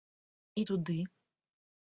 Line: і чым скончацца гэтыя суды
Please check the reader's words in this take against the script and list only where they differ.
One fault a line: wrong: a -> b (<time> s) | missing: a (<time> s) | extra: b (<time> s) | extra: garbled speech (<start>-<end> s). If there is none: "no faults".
missing: чым скончацца гэтыя (0.6 s)